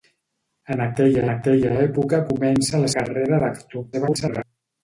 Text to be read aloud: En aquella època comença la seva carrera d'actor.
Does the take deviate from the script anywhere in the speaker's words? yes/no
yes